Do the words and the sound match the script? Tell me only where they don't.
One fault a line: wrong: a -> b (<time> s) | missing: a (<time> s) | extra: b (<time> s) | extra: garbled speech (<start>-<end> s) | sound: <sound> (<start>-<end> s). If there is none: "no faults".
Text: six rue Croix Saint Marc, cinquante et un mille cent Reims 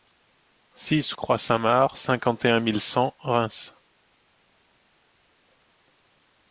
missing: rue (1.1 s)